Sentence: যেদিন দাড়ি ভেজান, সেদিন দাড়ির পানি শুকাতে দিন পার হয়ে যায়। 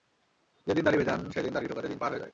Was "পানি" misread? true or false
true